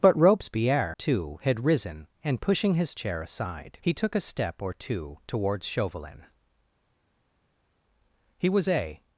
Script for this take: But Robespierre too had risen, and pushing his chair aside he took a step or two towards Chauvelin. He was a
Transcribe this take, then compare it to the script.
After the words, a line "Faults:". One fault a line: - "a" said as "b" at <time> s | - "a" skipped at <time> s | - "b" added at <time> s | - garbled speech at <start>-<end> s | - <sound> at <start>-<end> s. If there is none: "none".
But Robespierre too had risen, and pushing his chair aside he took a step or two towards Chauvelin. He was a
Faults:
none